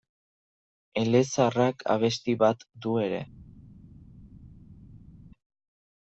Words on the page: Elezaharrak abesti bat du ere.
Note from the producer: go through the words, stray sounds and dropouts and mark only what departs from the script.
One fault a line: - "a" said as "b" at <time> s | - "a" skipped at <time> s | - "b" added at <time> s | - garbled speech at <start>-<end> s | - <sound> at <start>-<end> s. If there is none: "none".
none